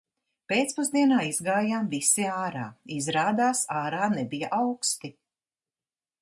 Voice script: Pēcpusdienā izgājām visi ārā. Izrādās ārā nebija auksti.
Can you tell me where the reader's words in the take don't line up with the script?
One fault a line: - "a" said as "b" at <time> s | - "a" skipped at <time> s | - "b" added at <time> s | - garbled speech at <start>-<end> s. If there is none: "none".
none